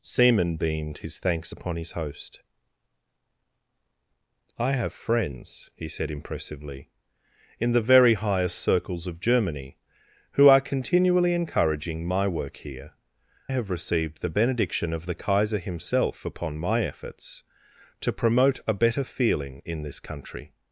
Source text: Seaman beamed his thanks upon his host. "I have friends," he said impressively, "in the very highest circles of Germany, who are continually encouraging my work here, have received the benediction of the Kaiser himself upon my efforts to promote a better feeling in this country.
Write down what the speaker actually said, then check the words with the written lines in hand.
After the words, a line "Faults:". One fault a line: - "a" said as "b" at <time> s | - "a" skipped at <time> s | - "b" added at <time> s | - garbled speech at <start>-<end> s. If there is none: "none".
Seaman beamed his thanks upon his host. "I have friends," he said impressively, "in the very highest circles of Germany, who are continually encouraging my work here, have received the benediction of the Kaiser himself upon my efforts to promote a better feeling in this country.
Faults:
none